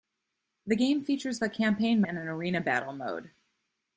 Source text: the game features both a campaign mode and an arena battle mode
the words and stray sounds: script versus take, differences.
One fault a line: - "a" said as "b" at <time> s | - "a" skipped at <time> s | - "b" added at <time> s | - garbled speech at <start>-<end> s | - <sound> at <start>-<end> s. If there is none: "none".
- "both" skipped at 1.4 s
- "mode" skipped at 2.0 s